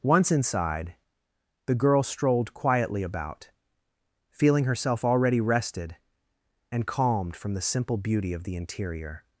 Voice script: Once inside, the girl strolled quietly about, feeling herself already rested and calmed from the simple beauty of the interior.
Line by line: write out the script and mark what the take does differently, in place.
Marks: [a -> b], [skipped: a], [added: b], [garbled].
Once inside, the girl strolled quietly about, feeling herself already rested and calmed from the simple beauty of the interior.